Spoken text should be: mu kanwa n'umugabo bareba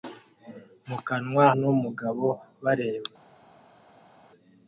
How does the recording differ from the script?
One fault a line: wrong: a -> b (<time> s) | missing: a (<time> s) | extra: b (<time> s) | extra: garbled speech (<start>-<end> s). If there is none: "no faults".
no faults